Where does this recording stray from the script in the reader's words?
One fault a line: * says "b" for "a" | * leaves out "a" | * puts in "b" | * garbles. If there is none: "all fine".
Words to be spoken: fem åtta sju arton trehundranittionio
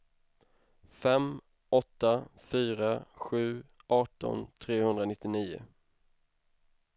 * puts in "fyra"